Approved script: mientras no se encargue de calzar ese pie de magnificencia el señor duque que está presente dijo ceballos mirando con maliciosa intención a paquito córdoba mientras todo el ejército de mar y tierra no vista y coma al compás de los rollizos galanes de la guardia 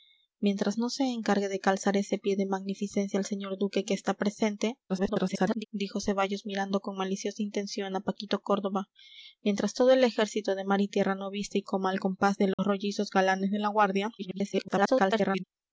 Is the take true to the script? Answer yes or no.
no